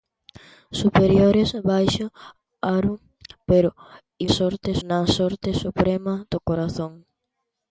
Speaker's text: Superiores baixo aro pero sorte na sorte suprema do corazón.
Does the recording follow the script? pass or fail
pass